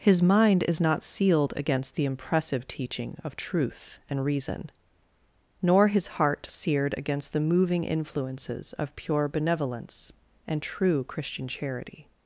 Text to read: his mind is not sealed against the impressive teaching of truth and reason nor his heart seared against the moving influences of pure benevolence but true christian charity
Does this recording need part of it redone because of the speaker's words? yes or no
yes